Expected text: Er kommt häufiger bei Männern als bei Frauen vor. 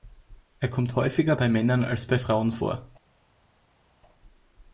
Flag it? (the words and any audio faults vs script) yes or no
no